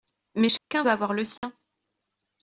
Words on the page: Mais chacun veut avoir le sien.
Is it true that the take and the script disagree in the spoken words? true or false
false